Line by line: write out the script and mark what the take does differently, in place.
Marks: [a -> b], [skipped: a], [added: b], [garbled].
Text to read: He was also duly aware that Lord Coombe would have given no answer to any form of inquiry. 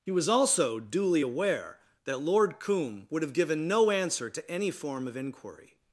He was also duly aware that Lord Coombe would have given no answer to any form of inquiry.